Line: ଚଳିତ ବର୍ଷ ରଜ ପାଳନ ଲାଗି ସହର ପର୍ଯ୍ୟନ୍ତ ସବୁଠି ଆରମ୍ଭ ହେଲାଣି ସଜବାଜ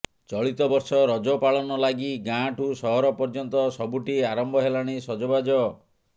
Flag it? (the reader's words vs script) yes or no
yes